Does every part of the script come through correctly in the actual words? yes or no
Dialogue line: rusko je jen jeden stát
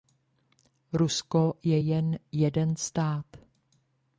yes